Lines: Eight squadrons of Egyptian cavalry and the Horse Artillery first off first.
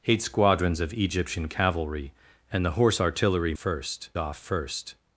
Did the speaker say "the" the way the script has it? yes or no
yes